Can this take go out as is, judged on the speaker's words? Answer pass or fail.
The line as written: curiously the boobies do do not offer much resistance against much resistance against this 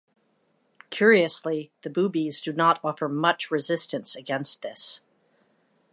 fail